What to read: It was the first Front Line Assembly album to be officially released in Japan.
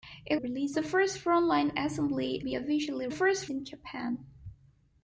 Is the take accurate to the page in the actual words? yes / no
no